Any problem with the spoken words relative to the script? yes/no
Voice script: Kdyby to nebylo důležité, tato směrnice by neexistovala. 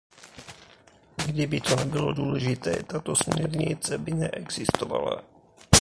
no